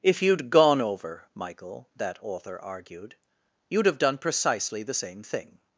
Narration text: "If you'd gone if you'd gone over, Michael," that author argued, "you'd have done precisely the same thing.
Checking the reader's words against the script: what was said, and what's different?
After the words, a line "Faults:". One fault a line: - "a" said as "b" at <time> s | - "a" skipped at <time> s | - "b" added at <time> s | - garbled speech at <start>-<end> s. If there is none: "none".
"If you'd gone over, Michael," that author argued, "you'd have done precisely the same thing.
Faults:
- "if you'd gone" skipped at 0.8 s